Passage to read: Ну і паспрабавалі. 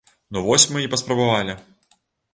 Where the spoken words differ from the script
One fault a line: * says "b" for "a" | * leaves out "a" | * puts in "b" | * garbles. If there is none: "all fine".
* puts in "вось мы"